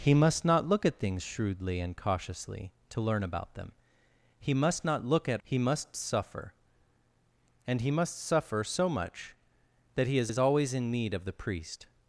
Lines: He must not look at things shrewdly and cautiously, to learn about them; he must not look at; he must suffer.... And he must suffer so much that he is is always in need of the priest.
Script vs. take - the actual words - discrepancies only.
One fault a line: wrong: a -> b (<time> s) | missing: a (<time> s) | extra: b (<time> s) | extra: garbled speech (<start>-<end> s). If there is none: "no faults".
no faults